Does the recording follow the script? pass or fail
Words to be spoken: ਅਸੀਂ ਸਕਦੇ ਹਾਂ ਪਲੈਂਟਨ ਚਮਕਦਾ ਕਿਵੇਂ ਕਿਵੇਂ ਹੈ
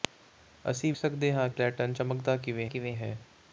pass